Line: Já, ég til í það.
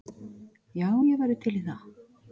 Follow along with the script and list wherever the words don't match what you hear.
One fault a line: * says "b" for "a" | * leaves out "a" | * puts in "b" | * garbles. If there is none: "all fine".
* puts in "væri"